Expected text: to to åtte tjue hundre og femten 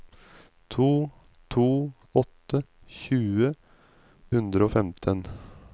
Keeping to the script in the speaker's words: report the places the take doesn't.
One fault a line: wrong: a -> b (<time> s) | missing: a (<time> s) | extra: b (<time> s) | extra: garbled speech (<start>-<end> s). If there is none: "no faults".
no faults